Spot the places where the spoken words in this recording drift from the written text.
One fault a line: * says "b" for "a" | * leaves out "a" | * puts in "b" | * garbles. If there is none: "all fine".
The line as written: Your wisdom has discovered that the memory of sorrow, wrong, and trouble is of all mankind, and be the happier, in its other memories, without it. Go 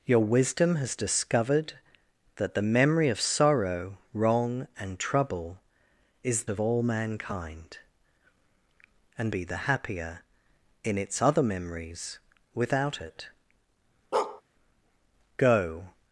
all fine